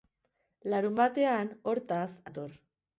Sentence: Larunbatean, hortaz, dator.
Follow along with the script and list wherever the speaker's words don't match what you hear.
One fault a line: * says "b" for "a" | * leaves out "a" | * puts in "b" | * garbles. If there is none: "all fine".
all fine